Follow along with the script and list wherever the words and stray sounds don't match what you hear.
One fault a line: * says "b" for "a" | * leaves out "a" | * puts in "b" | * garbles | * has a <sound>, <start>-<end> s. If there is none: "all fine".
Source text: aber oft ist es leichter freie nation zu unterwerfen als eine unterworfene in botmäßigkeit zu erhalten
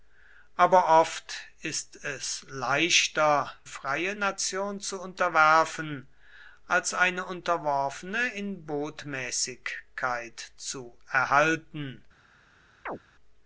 * has a chirp, 12.9-13.0 s